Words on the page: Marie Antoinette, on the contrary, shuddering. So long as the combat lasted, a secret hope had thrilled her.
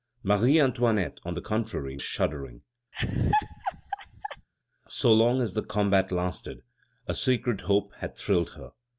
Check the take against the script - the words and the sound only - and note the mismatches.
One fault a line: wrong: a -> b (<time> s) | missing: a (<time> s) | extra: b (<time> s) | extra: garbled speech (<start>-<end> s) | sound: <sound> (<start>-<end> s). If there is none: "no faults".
sound: laugh (2.9-4.5 s)